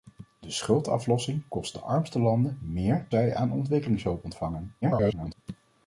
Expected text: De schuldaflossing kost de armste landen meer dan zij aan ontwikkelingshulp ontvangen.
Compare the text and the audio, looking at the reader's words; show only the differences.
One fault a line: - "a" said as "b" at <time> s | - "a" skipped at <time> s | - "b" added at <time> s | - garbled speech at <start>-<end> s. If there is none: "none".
- "dan" skipped at 3.1 s
- garbled speech at 4.8-5.3 s